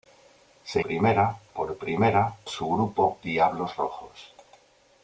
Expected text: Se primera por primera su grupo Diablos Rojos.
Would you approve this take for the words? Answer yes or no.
yes